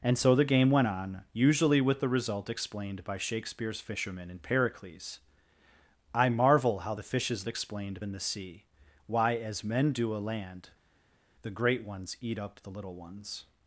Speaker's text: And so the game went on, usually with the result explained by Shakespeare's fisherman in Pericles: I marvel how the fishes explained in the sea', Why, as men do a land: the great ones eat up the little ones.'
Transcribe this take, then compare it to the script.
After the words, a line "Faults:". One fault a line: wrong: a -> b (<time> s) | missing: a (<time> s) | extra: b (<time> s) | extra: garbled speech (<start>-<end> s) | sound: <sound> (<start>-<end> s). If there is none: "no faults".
And so the game went on, usually with the result explained by Shakespeare's fisherman in Pericles: I marvel how the fishes explained in the sea', Why, as men do a land: the great ones eat up the little ones.'
Faults:
no faults